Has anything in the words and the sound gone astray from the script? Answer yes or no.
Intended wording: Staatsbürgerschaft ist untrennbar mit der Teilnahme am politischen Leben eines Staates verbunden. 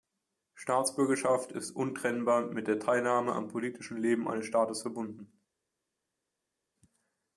no